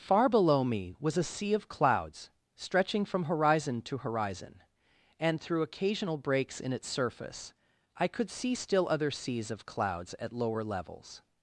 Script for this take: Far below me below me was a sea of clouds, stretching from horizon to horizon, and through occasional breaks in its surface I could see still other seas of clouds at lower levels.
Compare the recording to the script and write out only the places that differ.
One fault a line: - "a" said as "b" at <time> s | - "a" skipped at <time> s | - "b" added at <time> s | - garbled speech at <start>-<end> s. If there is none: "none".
- "below me" skipped at 0.9 s